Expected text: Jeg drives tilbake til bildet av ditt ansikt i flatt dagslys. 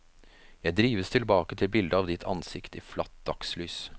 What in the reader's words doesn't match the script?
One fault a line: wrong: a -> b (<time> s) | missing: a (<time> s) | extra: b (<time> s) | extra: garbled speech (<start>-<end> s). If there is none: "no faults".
no faults